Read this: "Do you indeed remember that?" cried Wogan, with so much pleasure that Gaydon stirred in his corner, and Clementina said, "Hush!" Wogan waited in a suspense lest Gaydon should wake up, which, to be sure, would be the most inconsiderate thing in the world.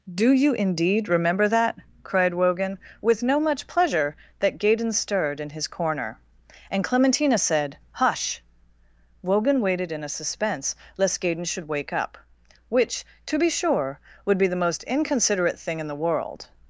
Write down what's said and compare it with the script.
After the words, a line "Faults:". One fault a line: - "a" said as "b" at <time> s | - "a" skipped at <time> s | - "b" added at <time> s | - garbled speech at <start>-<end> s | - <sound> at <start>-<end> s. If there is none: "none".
"Do you indeed remember that?" cried Wogan, with no much pleasure that Gaydon stirred in his corner, and Clementina said, "Hush!" Wogan waited in a suspense lest Gaydon should wake up, which, to be sure, would be the most inconsiderate thing in the world.
Faults:
- "so" said as "no" at 3.2 s